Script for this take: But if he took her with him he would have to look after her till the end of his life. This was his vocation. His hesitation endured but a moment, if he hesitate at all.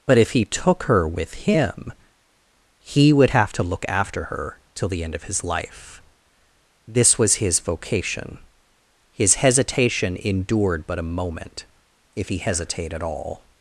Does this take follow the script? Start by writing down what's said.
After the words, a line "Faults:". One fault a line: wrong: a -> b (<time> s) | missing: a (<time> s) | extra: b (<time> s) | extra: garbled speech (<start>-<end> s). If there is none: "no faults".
But if he took her with him he would have to look after her till the end of his life. This was his vocation. His hesitation endured but a moment, if he hesitate at all.
Faults:
no faults